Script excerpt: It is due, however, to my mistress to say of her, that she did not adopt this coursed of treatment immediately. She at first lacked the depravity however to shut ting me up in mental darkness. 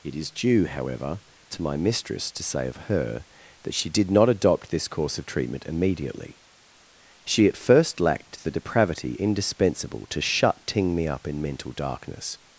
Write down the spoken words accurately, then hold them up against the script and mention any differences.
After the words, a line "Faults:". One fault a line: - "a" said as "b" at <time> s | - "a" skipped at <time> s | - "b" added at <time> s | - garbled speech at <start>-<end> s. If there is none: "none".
It is due, however, to my mistress to say of her, that she did not adopt this course of treatment immediately. She at first lacked the depravity indispensable to shut ting me up in mental darkness.
Faults:
- "coursed" said as "course" at 4.9 s
- "however" said as "indispensable" at 9.2 s